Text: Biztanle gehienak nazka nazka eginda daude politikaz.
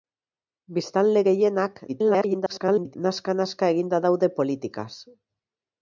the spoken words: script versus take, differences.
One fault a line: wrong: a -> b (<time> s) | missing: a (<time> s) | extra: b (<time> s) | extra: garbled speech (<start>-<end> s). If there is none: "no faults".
extra: garbled speech (1.9-3.0 s)